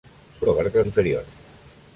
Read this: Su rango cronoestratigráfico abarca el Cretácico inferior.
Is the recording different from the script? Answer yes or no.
yes